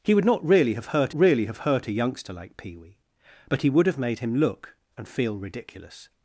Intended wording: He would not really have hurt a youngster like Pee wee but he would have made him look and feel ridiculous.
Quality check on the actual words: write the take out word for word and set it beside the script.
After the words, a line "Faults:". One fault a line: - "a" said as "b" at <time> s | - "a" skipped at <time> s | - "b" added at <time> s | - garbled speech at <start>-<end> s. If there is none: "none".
He would not really have hurt really have hurt a youngster like Pee wee but he would have made him look and feel ridiculous.
Faults:
- "really have hurt" added at 1.2 s